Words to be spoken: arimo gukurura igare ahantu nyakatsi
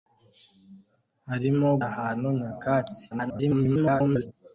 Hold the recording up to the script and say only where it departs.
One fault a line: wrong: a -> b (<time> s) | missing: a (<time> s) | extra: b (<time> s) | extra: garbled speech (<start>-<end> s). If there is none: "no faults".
missing: gukurura igare (1.7 s)
extra: garbled speech (3.1-4.3 s)